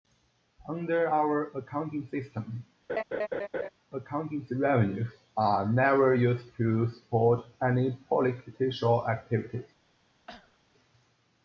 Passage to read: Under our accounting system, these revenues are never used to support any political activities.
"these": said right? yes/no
no